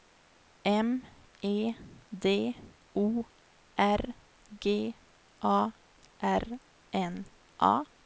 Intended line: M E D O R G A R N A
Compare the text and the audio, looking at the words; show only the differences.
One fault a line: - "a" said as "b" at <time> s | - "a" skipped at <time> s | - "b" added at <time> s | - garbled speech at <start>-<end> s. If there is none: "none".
none